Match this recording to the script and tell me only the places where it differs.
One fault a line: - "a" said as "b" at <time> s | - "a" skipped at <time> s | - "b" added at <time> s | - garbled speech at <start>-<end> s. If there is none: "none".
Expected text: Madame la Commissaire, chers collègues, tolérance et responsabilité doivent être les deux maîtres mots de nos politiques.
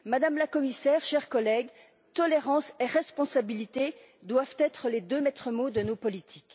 none